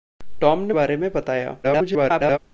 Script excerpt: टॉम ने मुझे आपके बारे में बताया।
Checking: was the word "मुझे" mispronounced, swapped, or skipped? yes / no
yes